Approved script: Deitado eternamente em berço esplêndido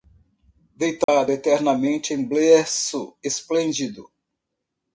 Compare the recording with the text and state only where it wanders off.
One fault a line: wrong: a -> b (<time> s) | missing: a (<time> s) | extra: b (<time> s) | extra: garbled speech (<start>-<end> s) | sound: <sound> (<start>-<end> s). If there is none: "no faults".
sound: dropout (1.0-1.1 s)